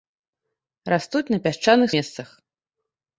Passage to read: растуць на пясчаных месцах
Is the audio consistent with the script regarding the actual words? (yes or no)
yes